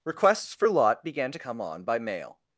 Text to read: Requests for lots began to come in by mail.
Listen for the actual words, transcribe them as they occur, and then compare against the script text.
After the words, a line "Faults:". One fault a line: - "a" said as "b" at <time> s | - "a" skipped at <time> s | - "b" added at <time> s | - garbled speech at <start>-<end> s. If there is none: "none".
Requests for lot began to come on by mail.
Faults:
- "lots" said as "lot" at 0.7 s
- "in" said as "on" at 1.6 s